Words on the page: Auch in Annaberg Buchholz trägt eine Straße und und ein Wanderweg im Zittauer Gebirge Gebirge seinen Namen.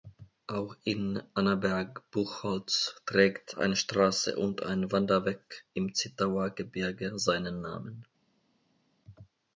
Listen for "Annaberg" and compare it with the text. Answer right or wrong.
right